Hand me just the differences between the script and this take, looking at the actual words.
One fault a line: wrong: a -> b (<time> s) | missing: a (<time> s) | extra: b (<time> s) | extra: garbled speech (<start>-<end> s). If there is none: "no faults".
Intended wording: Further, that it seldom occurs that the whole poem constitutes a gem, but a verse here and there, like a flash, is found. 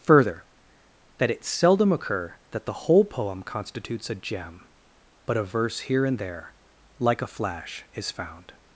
wrong: occurs -> occur (1.9 s)